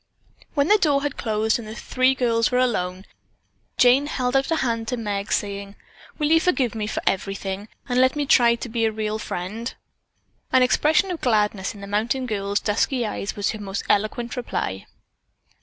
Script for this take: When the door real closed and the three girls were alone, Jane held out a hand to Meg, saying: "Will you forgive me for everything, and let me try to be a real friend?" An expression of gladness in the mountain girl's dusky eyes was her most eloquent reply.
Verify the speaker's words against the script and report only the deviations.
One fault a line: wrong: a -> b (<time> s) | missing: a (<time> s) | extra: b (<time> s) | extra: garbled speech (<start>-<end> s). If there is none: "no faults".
wrong: real -> had (1.0 s)